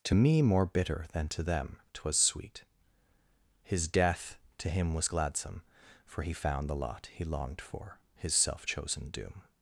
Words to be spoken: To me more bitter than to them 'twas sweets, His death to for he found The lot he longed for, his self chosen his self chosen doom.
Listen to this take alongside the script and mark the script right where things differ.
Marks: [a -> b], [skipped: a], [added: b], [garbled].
To me more bitter than to them 'twas [sweets, -> sweet] His death to [added: him was gladsome] for he found The lot he longed for, his self chosen [skipped: his self chosen] doom.